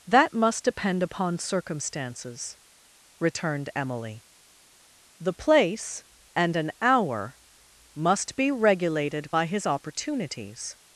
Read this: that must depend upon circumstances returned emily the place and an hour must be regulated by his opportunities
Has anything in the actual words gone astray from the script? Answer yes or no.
no